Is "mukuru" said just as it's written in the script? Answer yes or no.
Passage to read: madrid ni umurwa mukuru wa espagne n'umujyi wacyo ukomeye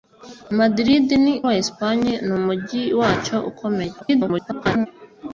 no